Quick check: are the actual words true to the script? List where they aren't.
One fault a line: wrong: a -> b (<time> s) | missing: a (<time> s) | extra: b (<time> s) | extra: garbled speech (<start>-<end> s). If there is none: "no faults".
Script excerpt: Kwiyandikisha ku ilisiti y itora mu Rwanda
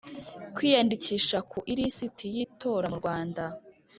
no faults